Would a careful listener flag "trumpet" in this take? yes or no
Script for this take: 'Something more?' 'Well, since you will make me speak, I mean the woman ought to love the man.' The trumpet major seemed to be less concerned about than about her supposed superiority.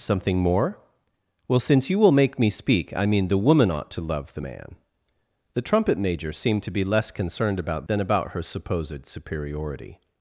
no